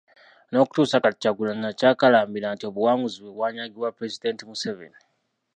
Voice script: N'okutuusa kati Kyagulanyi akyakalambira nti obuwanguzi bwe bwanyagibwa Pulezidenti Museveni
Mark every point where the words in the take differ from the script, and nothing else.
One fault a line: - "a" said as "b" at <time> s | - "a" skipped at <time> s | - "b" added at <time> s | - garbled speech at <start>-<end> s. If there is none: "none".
none